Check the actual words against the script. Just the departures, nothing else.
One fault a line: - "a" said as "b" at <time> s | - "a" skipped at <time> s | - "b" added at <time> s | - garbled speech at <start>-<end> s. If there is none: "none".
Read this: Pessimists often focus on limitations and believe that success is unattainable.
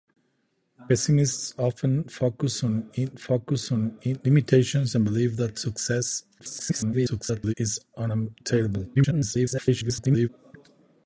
- "focus on" added at 3.1 s
- garbled speech at 6.4-7.5 s
- garbled speech at 8.9-10.3 s